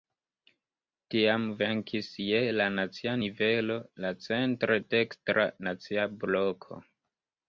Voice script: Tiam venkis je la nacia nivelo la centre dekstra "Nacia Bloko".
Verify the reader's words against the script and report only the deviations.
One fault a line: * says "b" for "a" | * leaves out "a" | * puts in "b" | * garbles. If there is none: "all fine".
all fine